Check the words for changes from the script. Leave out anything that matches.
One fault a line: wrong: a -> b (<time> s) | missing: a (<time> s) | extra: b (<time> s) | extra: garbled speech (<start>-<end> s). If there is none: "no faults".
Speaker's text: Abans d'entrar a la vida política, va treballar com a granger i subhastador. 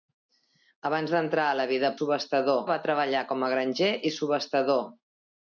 wrong: política -> subhastador (2.0 s)